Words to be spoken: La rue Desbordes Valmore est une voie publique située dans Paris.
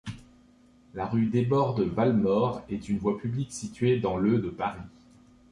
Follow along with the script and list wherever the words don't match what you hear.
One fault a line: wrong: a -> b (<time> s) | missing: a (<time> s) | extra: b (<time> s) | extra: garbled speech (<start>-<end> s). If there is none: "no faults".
extra: le de (4.2 s)